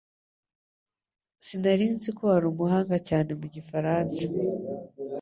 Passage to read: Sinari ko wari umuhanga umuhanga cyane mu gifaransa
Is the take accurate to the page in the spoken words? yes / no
no